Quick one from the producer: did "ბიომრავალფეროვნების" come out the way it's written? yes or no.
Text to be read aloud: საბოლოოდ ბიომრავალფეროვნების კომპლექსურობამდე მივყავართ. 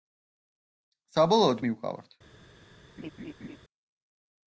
no